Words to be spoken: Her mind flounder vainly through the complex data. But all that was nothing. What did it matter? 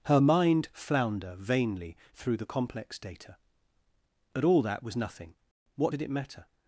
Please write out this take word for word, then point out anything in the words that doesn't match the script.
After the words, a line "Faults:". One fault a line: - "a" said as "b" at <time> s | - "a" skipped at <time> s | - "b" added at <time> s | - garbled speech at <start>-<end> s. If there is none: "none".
Her mind flounder vainly through the complex data. But all that was nothing. What did it matter?
Faults:
none